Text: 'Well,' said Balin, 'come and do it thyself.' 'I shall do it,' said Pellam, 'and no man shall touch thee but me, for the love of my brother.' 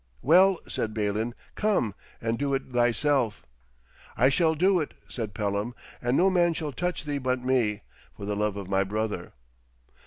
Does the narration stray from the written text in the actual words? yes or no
no